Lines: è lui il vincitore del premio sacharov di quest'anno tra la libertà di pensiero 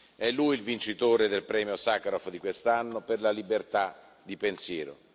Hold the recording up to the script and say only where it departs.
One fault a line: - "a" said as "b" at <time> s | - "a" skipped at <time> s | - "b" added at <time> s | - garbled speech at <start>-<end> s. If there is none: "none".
- "tra" said as "per" at 3.0 s